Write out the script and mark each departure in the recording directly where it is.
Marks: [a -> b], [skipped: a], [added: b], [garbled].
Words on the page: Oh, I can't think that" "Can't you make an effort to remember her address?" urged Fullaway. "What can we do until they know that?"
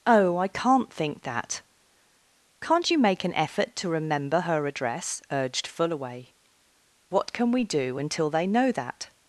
Oh, I can't think that" "Can't you make an effort to remember her address?" urged Fullaway. "What can we do until they know that?"